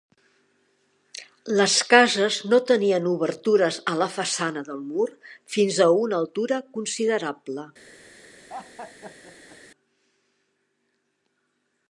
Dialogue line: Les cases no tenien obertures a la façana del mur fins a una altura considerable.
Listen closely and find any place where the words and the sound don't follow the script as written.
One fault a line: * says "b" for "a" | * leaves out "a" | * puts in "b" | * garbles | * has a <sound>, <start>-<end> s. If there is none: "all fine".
* has a laugh, 8.5-9.6 s